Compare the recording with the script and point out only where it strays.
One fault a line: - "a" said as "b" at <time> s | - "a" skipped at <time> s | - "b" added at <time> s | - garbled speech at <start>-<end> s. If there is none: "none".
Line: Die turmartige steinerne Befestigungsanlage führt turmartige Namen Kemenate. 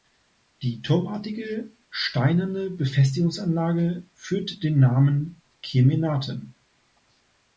- "turmartige" said as "den" at 4.6 s